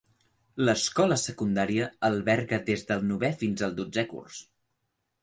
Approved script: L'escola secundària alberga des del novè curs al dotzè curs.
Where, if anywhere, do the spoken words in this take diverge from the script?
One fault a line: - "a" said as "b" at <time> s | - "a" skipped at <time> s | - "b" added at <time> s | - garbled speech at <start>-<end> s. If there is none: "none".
- "curs" said as "fins" at 3.4 s